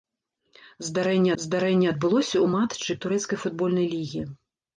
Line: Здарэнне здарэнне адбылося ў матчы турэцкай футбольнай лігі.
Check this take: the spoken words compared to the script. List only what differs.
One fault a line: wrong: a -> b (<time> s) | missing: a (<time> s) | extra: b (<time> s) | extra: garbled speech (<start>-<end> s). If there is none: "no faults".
no faults